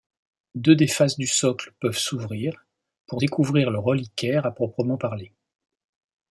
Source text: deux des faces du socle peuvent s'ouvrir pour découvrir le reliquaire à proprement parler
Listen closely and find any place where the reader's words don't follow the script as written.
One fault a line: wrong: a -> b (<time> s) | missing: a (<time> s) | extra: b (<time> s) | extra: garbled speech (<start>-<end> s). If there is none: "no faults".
no faults